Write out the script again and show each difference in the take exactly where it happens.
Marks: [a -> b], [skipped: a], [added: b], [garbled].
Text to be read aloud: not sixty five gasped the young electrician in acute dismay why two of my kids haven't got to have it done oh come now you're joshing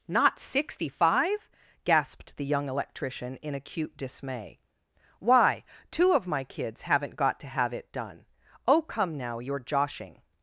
not sixty five gasped the young electrician in acute dismay why two of my kids haven't got to have it done oh come now you're joshing